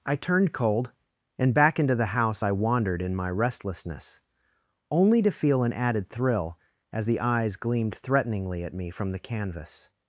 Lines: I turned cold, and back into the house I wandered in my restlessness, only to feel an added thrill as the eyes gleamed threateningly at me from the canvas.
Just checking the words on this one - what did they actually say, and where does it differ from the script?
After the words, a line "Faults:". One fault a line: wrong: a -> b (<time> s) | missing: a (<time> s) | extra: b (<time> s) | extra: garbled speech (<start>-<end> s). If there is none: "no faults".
I turned cold, and back into the house I wandered in my restlessness, only to feel an added thrill as the eyes gleamed threateningly at me from the canvas.
Faults:
no faults